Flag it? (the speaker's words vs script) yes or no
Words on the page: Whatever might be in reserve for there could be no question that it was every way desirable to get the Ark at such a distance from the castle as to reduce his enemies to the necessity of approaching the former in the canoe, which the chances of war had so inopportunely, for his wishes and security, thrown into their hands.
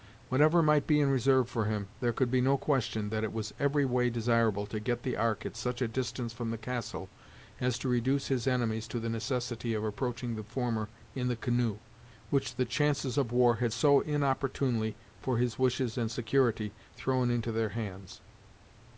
yes